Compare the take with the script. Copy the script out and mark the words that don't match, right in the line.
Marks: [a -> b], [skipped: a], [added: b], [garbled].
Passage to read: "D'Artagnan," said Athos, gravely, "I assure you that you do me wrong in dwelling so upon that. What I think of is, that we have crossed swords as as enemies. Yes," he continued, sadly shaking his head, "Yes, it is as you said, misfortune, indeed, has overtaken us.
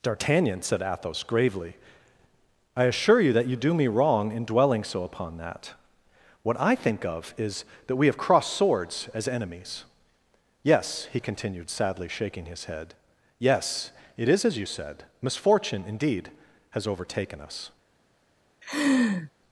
"D'Artagnan," said Athos, gravely, "I assure you that you do me wrong in dwelling so upon that. What I think of is, that we have crossed swords as [skipped: as] enemies. Yes," he continued, sadly shaking his head, "Yes, it is as you said, misfortune, indeed, has overtaken us.